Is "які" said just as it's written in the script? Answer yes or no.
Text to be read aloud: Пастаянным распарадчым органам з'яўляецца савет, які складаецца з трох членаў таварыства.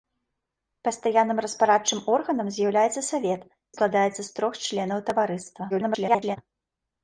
no